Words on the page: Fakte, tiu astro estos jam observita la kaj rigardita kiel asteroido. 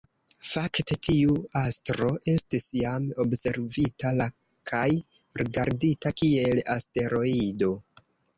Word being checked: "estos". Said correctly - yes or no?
no